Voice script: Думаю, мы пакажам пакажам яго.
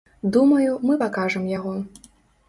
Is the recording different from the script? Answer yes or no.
yes